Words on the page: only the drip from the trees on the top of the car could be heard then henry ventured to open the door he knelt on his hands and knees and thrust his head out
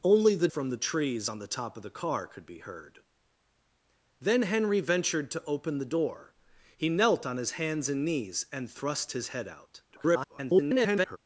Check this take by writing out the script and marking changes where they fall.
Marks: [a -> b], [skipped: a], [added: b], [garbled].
only the [skipped: drip] from the trees on the top of the car could be heard then henry ventured to open the door he knelt on his hands and knees and thrust his head out [garbled]